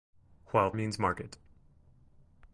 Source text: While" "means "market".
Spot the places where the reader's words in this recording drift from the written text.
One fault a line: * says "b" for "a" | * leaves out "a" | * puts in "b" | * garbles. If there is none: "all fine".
all fine